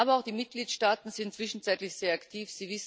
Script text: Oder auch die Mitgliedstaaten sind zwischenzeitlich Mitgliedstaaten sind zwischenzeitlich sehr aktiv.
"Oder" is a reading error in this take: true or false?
true